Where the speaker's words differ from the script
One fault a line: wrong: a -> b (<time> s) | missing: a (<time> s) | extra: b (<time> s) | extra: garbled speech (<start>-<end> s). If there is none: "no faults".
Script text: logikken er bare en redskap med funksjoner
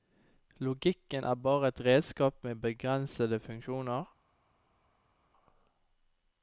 wrong: en -> et (1.7 s)
extra: begrensede (2.6 s)